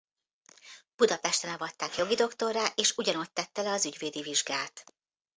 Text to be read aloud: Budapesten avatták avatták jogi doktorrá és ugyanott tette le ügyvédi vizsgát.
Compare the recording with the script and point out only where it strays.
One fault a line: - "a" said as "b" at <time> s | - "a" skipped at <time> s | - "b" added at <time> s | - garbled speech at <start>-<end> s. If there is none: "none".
- "avatták" skipped at 1.9 s
- "az" added at 3.7 s